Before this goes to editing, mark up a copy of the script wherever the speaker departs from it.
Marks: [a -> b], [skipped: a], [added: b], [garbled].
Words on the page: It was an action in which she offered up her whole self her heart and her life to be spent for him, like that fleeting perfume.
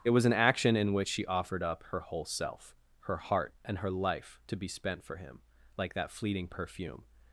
It was an action in which she offered up her whole self her heart and her life to be spent for him, like that fleeting perfume.